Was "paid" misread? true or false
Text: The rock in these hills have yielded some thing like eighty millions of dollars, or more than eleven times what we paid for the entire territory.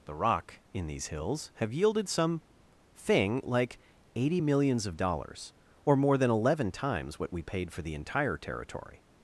false